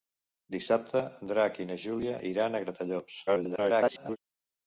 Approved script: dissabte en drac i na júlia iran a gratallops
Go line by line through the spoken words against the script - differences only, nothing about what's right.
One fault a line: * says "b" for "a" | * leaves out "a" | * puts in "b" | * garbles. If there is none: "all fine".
* garbles